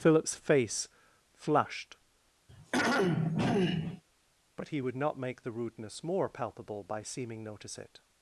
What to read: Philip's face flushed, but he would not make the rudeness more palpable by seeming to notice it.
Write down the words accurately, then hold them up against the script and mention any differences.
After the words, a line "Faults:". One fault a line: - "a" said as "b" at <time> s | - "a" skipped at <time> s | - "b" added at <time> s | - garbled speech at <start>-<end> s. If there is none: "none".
Philip's face flushed, but he would not make the rudeness more palpable by seeming notice it.
Faults:
- "to" skipped at 7.4 s